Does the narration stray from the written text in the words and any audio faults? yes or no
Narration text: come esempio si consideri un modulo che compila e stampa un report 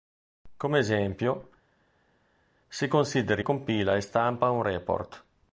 yes